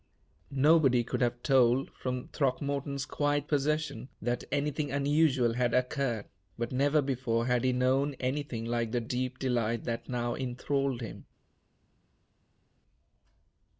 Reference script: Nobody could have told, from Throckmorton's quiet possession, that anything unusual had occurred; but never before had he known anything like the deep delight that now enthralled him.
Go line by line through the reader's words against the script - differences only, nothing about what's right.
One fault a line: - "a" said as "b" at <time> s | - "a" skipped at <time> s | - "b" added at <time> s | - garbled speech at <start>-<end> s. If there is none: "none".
none